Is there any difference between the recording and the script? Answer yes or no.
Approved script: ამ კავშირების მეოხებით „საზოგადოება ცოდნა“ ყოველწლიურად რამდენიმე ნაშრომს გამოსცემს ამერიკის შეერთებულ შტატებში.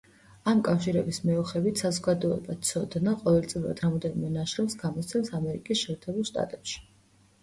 no